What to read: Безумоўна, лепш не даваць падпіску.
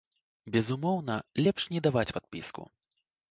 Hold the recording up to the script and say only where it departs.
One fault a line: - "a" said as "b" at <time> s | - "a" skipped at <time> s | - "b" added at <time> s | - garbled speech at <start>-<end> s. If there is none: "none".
none